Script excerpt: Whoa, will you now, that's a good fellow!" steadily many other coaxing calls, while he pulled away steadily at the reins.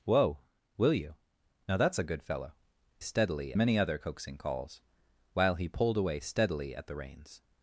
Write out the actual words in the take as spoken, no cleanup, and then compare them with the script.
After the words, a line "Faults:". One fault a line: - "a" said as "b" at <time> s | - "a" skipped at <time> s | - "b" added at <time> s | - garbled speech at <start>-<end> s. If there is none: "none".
Whoa, will you now, that's a good fellow!" steadily many other coaxing calls, while he pulled away steadily at the reins.
Faults:
none